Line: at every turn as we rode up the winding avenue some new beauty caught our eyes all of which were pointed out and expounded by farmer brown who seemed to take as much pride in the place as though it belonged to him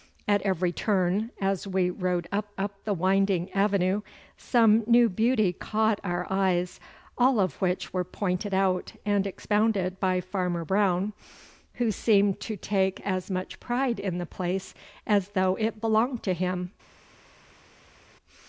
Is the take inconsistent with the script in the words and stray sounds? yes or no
yes